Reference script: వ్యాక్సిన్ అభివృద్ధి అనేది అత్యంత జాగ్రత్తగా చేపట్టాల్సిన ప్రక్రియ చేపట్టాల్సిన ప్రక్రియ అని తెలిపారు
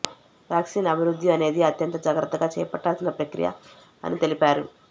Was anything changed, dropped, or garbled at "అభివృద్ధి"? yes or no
no